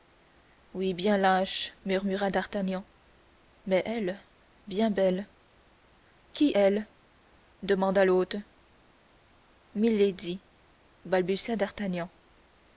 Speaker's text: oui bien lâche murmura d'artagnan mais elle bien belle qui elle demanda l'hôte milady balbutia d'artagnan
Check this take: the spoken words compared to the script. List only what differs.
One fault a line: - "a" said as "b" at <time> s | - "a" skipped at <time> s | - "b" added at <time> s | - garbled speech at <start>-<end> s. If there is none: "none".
none